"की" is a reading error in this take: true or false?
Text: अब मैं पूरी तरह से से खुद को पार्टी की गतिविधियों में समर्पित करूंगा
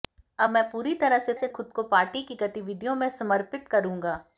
false